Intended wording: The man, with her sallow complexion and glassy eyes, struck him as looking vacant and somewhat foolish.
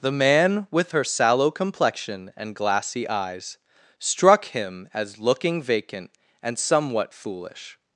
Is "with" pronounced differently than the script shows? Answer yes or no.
no